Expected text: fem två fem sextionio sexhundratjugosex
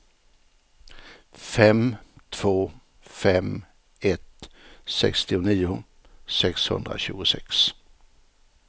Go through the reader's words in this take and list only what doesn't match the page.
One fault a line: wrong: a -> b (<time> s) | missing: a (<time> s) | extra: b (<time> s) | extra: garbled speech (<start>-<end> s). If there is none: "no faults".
extra: ett (4.0 s)